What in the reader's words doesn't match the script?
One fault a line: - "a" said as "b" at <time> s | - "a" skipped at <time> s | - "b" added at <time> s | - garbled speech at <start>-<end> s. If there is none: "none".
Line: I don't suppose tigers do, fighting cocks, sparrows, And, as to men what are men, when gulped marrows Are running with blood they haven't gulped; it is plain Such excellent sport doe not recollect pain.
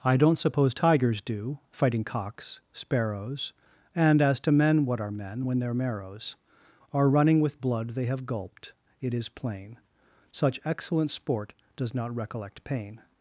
- "gulped" said as "their" at 5.6 s
- "haven't" said as "have" at 8.0 s
- "doe" said as "does" at 11.8 s